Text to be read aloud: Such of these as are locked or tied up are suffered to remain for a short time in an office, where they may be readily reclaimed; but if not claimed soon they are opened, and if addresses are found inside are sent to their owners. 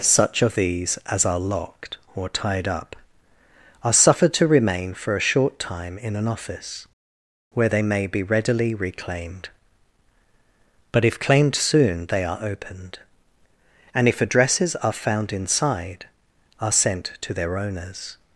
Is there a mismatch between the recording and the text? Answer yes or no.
yes